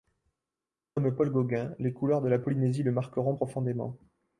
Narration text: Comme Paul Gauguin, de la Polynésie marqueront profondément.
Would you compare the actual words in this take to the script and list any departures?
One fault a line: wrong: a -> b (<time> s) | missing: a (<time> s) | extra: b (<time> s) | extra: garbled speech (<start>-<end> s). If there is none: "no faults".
extra: les couleurs (1.8 s)
extra: le (2.8 s)